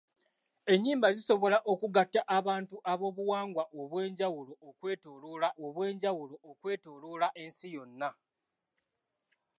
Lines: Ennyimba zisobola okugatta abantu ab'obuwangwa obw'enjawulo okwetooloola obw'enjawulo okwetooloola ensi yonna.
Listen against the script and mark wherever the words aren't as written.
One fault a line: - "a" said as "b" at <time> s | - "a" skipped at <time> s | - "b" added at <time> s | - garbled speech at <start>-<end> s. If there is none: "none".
none